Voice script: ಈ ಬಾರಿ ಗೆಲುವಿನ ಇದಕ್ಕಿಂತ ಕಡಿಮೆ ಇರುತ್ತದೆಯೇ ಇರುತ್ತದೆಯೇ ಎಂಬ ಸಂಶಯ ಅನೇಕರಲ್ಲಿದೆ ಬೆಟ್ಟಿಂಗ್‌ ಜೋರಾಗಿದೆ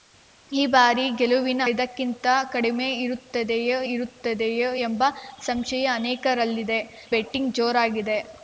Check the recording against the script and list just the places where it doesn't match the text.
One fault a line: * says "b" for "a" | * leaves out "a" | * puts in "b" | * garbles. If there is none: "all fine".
all fine